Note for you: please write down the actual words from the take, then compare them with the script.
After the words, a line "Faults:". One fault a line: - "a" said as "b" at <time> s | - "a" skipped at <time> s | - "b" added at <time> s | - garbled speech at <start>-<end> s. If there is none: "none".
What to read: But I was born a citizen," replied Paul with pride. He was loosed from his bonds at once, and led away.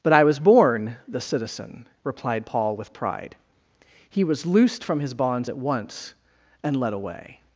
But I was born the citizen," replied Paul with pride. He was loosed from his bonds at once, and led away.
Faults:
- "a" said as "the" at 1.1 s